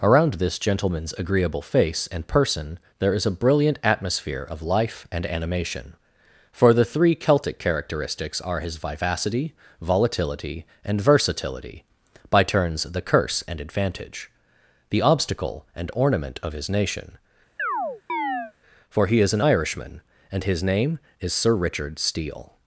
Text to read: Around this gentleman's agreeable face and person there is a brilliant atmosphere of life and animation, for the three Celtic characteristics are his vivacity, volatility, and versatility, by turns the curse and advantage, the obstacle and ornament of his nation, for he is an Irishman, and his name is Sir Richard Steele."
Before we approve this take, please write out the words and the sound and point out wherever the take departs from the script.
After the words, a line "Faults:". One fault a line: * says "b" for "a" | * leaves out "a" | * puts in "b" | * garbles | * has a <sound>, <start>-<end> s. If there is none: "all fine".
Around this gentleman's agreeable face and person there is a brilliant atmosphere of life and animation, for the three Celtic characteristics are his vivacity, volatility, and versatility, by turns the curse and advantage, the obstacle and ornament of his nation, for he is an Irishman, and his name is Sir Richard Steele."
Faults:
* has a chirp, 17.6-18.5 s